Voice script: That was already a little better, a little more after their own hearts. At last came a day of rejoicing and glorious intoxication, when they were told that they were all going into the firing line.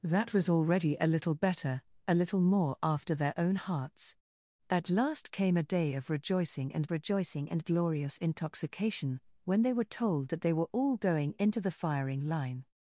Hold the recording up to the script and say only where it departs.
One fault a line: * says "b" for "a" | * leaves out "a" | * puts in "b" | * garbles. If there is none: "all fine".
* puts in "rejoicing and"